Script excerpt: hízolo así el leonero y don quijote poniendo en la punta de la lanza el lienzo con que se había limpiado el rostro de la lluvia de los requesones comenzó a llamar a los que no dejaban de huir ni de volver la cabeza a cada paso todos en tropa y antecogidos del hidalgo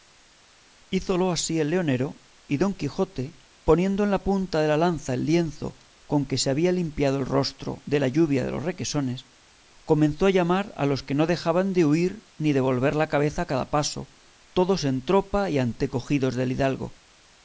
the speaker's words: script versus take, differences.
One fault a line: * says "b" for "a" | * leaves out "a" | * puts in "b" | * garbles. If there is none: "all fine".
all fine